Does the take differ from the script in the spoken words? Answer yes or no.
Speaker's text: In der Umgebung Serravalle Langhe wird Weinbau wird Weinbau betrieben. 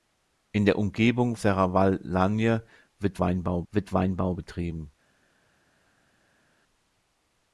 no